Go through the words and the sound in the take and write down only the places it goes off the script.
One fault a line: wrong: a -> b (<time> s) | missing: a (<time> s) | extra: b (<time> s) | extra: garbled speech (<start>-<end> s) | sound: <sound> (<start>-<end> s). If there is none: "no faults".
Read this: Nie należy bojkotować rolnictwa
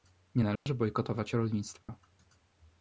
sound: dropout (0.6-0.7 s)
sound: dropout (1.8-1.9 s)